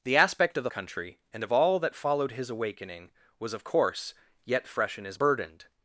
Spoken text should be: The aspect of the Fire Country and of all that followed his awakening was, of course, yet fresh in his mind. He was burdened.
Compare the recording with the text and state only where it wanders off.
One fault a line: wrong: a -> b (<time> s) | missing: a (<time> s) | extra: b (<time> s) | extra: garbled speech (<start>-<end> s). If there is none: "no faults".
missing: Fire (0.7 s)
missing: mind He was (5.2 s)